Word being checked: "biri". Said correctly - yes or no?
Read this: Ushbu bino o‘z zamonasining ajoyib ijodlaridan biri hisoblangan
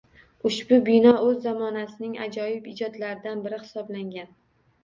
yes